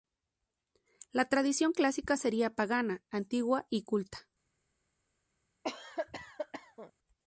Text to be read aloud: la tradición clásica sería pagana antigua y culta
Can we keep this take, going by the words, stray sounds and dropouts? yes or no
no